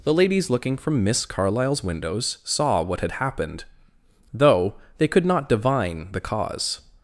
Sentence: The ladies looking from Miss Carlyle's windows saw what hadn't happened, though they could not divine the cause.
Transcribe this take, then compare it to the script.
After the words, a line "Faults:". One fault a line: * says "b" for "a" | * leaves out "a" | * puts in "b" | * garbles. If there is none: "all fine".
The ladies looking from Miss Carlyle's windows saw what had happened, though they could not divine the cause.
Faults:
* says "had" for "hadn't"